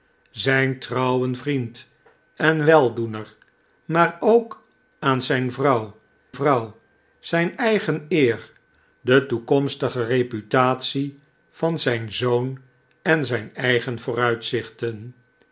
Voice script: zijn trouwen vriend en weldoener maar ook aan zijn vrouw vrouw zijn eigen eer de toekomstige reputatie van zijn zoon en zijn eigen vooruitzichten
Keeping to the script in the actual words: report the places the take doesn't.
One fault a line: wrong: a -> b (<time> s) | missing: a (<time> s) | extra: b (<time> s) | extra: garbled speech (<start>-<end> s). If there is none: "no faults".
no faults